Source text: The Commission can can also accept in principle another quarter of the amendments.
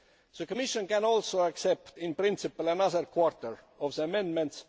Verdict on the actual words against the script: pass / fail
fail